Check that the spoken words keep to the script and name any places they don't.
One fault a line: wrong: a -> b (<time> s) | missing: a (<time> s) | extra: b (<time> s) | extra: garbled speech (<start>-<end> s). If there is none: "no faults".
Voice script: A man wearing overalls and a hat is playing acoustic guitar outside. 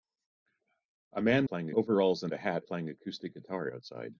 wrong: wearing -> playing (1.4 s)
missing: is (2.6 s)